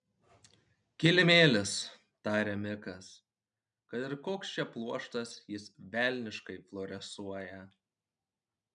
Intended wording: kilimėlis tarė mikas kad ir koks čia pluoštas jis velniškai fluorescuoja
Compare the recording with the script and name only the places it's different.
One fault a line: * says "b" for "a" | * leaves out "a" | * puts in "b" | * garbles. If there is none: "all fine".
all fine